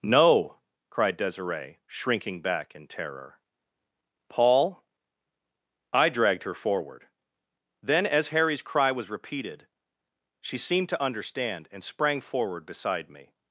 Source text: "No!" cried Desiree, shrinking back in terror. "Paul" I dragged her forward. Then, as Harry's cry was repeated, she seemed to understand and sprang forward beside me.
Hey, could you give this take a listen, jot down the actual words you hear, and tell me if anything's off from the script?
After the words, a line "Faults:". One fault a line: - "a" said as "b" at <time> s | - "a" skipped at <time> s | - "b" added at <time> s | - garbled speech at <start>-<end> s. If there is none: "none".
"No!" cried Desiree, shrinking back in terror. "Paul" I dragged her forward. Then, as Harry's cry was repeated, she seemed to understand and sprang forward beside me.
Faults:
none